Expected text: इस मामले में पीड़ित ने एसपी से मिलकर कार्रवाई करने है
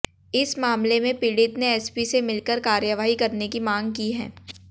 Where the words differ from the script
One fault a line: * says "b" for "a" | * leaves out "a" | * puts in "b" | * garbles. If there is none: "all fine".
* puts in "की मांग की"